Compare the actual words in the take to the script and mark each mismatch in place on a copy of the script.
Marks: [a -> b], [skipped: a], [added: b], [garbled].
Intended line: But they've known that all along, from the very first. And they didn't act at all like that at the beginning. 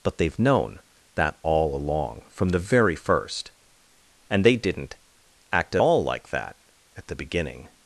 But they've known that all along, from the very first. And they didn't act at all like that at the beginning.